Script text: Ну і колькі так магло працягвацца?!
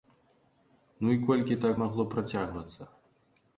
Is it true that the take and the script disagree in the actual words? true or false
false